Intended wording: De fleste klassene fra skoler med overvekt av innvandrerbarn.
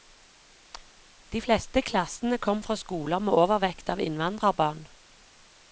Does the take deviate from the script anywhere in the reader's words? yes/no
yes